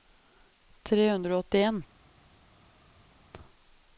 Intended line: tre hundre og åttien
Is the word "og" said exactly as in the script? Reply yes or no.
yes